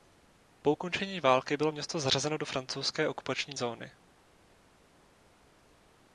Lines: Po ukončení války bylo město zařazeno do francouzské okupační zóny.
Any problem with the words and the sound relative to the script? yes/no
no